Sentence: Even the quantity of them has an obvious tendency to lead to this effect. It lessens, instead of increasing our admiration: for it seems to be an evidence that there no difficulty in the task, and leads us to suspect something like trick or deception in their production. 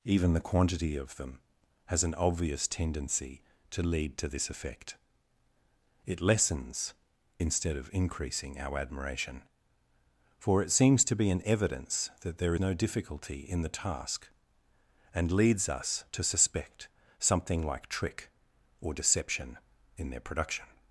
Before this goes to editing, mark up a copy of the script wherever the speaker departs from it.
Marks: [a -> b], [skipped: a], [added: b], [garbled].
Even the quantity of them has an obvious tendency to lead to this effect. It lessens, instead of increasing our admiration: for it seems to be an evidence that there no difficulty in the task, and leads us to suspect something like trick or deception in their production.